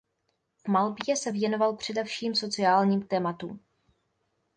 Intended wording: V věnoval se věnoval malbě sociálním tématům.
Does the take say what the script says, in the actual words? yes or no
no